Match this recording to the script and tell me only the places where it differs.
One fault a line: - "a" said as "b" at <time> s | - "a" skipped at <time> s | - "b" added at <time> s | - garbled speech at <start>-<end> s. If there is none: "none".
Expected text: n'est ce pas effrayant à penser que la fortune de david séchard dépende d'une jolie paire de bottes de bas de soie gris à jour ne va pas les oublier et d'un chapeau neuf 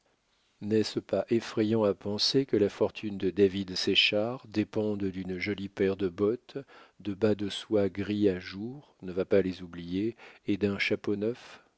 none